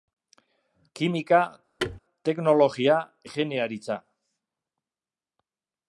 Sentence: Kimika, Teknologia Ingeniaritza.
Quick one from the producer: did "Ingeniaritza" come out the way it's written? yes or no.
yes